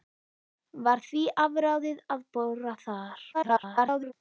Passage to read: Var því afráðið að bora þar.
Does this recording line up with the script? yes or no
no